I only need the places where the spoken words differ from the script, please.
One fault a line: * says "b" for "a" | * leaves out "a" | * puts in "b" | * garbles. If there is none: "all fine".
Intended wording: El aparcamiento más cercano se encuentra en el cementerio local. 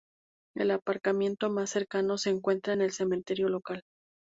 all fine